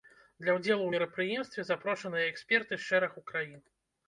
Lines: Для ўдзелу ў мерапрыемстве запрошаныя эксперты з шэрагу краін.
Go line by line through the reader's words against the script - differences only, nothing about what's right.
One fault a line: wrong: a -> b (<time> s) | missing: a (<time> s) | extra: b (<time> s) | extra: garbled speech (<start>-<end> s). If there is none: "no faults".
no faults